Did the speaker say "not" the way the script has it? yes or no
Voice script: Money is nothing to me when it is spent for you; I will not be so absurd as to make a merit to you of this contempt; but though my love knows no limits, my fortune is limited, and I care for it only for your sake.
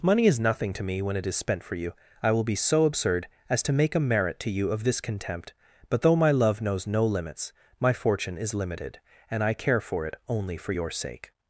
no